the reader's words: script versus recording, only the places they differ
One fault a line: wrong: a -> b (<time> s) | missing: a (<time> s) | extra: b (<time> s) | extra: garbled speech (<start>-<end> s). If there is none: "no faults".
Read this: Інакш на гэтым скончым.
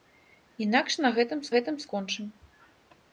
extra: гэтым (1.6 s)